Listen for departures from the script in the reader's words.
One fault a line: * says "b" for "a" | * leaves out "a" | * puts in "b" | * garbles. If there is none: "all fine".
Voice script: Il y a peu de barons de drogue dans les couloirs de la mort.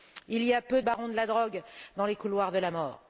* puts in "la"